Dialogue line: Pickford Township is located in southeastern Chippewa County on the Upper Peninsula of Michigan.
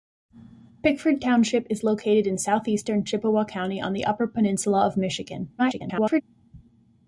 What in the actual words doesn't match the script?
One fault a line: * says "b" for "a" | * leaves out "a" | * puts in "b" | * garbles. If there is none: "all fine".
* garbles